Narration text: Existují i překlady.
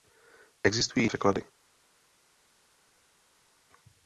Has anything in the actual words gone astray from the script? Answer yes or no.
no